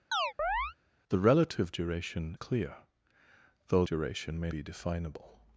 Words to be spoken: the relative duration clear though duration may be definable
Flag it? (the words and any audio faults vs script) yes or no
yes